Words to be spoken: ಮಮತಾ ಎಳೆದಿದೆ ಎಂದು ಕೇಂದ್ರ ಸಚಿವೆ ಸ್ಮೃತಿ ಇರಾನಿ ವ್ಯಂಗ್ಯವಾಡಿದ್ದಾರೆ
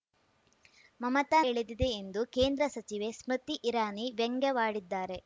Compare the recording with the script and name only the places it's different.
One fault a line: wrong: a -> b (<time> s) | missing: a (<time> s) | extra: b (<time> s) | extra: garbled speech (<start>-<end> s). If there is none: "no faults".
no faults